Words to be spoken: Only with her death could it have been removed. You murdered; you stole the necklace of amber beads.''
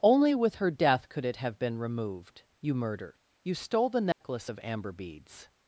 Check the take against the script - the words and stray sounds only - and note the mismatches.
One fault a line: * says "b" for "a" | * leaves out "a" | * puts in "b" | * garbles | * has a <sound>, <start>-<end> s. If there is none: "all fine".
* has a dropout, 4.1-4.2 s